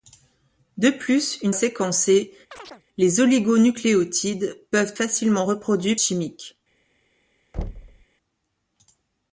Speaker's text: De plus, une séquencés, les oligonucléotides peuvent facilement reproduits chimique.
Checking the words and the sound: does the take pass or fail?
fail